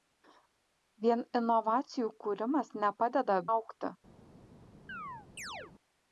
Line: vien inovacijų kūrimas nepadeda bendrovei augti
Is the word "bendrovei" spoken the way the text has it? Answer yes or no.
no